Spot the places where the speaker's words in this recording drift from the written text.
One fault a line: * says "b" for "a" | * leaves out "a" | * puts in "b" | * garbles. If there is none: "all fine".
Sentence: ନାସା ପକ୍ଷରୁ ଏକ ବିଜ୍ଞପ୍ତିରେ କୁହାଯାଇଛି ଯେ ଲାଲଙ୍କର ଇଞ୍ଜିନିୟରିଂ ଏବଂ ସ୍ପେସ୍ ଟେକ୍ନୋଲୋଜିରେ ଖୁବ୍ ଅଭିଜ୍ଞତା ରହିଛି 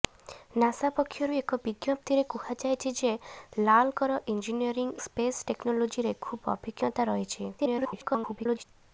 * leaves out "ଏବଂ"
* garbles